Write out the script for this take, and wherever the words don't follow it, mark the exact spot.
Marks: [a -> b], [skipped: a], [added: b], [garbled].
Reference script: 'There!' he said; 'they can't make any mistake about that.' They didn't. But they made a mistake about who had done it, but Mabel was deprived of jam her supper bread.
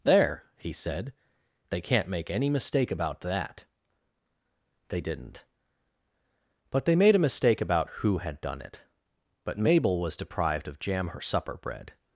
'There!' he said; 'they can't make any mistake about that.' They didn't. But they made a mistake about who had done it, but Mabel was deprived of jam her supper bread.